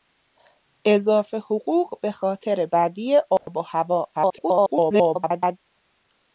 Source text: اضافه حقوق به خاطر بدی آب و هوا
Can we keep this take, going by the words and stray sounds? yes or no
no